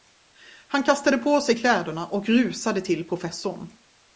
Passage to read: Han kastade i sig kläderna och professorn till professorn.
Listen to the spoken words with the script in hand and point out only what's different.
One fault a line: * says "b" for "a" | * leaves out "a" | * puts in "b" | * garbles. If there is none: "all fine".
* says "på" for "i"
* says "rusade" for "professorn"